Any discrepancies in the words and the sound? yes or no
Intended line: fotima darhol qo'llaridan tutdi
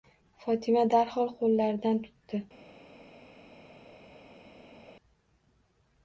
no